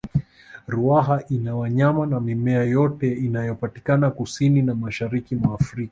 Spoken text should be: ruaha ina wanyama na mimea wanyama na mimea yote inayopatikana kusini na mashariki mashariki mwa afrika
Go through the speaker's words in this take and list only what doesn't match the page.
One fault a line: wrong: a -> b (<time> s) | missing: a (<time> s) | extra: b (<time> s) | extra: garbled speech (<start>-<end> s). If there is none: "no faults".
missing: wanyama na mimea (2.6 s)
missing: mashariki (5.4 s)